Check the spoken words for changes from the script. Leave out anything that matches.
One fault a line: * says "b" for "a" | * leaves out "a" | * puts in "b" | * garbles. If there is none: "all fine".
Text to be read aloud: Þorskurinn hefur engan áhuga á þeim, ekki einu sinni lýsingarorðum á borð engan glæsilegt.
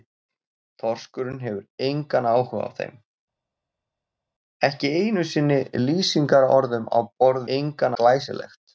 all fine